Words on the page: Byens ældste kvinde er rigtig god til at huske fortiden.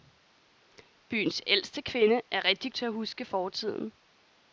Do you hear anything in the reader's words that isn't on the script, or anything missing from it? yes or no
yes